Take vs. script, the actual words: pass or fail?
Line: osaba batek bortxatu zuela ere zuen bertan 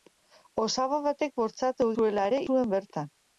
pass